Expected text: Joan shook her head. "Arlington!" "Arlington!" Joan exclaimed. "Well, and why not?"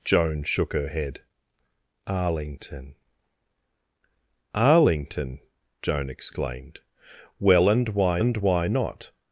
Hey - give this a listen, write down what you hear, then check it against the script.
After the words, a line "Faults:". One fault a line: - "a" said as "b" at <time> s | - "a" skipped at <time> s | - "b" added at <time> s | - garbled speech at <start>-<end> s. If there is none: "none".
Joan shook her head. "Arlington!" "Arlington!" Joan exclaimed. "Well, and why and why not?"
Faults:
- "and why" added at 8.2 s